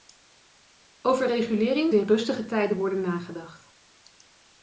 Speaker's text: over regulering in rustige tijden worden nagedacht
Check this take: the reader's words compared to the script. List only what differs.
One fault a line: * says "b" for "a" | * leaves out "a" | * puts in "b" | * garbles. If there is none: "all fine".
all fine